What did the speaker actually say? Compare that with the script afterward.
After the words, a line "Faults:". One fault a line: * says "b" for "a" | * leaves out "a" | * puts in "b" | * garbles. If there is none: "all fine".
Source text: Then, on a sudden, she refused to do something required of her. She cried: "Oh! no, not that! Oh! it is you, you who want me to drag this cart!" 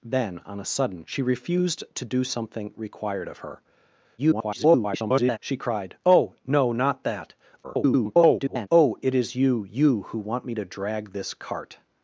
Then, on a sudden, she refused to do something required of her. [garbled] She cried: "Oh! no, not that! [garbled] Oh! it is you, you who want me to drag this cart!"
Faults:
* garbles
* garbles